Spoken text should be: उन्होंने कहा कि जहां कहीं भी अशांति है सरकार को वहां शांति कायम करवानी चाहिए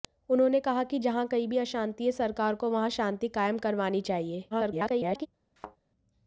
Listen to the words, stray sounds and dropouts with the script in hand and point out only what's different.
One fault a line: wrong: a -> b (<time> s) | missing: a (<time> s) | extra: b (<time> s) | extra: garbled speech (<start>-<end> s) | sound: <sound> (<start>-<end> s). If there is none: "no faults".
extra: garbled speech (4.5-5.3 s)
sound: thud (5.6-5.8 s)